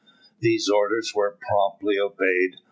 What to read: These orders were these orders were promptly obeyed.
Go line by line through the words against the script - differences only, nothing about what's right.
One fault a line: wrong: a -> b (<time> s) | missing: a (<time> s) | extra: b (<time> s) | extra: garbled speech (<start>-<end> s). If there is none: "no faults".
missing: these orders were (1.4 s)